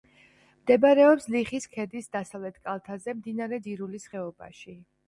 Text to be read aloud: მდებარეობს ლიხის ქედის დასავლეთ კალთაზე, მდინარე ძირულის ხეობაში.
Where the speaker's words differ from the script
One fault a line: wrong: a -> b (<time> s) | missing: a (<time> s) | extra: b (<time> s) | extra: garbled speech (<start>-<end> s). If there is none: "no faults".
no faults